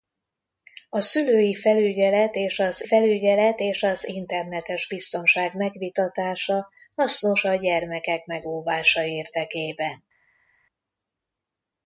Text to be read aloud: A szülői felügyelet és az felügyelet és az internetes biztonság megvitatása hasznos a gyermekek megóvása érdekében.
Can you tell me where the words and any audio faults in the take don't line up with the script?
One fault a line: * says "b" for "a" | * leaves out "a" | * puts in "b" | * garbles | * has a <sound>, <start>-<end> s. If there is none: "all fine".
all fine